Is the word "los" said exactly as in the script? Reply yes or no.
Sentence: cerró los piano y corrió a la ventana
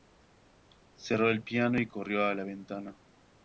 no